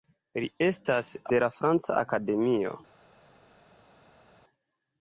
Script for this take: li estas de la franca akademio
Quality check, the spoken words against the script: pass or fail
pass